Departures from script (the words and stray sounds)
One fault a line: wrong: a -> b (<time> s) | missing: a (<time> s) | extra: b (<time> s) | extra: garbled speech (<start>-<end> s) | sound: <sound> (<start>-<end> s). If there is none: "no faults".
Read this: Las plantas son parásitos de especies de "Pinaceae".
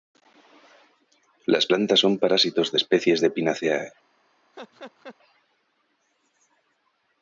sound: laugh (4.5-5.2 s)